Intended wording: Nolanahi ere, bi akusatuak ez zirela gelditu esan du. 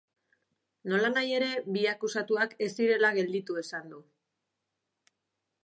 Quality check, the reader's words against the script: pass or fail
pass